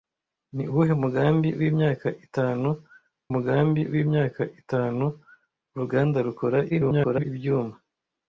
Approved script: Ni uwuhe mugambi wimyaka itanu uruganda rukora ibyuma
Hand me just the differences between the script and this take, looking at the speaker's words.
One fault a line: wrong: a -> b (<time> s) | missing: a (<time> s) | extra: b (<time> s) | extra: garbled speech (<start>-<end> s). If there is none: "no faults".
extra: mugambi wimyaka itanu (3.3 s)
extra: garbled speech (6.7-7.2 s)